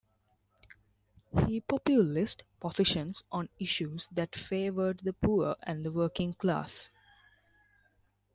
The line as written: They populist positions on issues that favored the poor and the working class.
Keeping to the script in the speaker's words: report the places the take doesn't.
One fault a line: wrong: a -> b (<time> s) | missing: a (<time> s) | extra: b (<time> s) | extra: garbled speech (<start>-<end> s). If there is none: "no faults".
wrong: They -> He (1.4 s)